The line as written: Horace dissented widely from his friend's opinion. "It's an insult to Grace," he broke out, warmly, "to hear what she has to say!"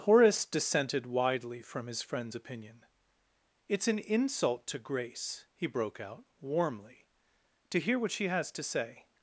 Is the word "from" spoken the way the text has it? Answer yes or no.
yes